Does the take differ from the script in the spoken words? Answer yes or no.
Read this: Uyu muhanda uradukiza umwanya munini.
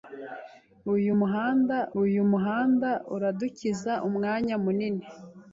yes